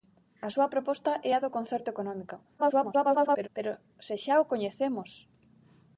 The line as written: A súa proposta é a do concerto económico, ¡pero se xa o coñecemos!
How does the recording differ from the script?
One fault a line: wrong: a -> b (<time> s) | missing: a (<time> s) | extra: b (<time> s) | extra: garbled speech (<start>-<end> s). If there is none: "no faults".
extra: garbled speech (2.6-3.5 s)